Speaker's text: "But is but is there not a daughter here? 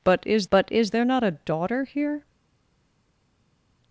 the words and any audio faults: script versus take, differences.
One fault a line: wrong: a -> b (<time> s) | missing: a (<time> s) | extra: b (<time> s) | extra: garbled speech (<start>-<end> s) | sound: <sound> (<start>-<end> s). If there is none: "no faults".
no faults